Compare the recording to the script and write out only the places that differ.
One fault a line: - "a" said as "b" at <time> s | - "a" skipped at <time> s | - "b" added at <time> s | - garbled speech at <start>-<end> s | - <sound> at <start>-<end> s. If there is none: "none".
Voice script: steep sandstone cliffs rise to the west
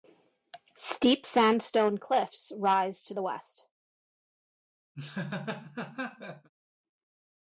- laugh at 4.9-6.5 s